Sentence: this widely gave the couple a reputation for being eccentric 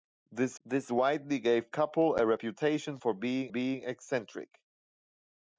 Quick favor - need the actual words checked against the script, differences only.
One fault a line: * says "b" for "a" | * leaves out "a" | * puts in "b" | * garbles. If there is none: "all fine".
* puts in "this"
* leaves out "the"
* puts in "being"